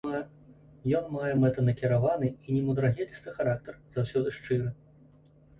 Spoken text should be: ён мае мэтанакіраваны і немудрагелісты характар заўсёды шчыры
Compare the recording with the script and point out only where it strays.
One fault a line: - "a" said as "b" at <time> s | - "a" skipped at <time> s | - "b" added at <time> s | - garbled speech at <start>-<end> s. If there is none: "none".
none